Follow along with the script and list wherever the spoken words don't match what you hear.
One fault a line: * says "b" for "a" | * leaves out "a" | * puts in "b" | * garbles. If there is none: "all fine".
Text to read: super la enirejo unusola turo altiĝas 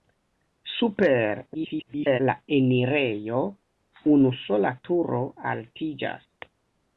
* garbles